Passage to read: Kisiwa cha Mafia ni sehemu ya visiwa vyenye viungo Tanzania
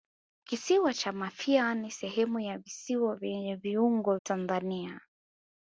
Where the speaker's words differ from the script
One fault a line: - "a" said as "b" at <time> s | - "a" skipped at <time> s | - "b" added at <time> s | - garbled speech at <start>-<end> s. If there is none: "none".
none